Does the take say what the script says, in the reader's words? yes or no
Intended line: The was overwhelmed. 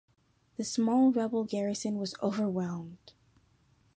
no